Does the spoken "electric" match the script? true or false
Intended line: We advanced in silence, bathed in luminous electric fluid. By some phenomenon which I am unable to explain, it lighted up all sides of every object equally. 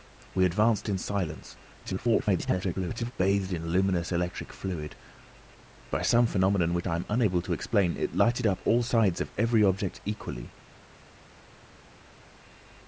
true